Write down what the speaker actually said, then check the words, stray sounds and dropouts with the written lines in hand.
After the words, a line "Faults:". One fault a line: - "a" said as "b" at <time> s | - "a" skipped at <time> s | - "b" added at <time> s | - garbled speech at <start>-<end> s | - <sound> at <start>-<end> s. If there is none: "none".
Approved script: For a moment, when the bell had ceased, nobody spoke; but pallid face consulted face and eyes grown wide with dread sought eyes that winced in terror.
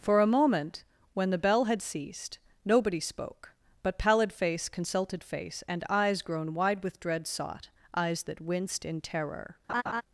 For a moment, when the bell had ceased, nobody spoke; but pallid face consulted face and eyes grown wide with dread sought eyes that winced in terror.
Faults:
- laugh at 9.7-10.0 s